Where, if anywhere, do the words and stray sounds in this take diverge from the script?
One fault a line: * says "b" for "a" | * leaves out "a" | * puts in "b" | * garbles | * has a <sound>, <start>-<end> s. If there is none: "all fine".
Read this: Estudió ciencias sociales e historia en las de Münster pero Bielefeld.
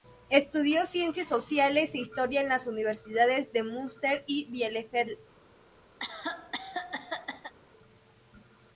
* puts in "universidades"
* says "y" for "pero"
* has a cough, 6.0-7.5 s